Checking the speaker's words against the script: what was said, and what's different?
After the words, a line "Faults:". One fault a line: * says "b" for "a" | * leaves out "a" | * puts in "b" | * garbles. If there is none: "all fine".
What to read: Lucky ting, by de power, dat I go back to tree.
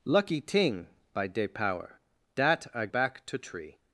Lucky ting, by de power, dat I back to tree.
Faults:
* leaves out "go"